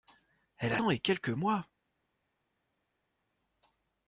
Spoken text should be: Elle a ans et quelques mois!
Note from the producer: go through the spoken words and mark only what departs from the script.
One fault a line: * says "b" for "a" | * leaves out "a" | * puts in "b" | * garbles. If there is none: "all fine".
all fine